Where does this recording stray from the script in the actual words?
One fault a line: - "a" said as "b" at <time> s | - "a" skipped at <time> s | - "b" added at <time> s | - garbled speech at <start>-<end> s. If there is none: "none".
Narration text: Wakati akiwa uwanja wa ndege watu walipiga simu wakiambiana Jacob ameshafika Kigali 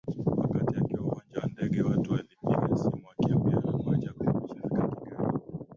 - "kuwa" added at 3.7 s